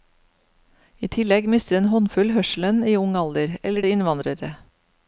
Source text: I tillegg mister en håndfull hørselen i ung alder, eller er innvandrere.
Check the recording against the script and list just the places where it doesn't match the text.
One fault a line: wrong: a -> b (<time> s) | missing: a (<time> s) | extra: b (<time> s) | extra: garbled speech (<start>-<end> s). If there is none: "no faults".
no faults